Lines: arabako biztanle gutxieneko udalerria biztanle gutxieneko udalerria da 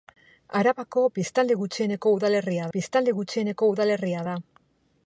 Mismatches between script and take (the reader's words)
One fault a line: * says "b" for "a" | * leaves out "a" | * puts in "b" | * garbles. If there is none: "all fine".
all fine